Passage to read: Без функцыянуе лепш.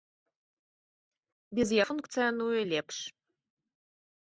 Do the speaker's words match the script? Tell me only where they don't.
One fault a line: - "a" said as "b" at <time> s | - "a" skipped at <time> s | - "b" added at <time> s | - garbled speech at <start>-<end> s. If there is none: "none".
none